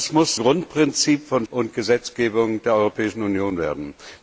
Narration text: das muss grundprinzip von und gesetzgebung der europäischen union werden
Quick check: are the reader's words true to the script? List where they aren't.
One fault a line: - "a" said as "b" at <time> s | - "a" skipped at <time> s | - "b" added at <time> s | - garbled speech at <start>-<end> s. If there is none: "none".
none